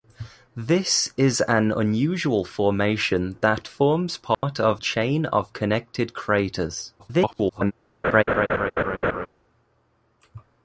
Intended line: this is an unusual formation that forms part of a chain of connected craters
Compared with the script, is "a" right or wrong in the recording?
wrong